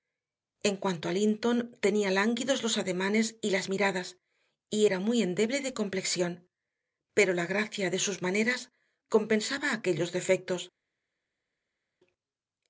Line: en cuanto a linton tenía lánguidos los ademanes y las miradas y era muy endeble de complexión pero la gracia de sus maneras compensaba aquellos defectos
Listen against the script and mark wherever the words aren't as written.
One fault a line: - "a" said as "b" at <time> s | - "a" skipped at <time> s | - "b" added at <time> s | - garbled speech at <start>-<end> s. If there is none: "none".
none